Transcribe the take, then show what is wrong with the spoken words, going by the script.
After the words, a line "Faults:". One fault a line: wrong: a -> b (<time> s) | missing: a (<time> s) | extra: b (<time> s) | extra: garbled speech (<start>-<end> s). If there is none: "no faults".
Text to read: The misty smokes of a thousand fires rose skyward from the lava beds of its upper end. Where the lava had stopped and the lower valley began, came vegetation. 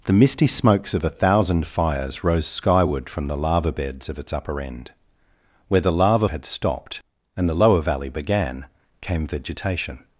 The misty smokes of a thousand fires rose skyward from the lava beds of its upper end. Where the lava had stopped and the lower valley began, came vegetation.
Faults:
no faults